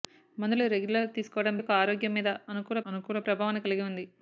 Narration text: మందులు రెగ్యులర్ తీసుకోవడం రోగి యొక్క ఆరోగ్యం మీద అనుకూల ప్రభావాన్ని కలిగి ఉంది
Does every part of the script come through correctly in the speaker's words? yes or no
no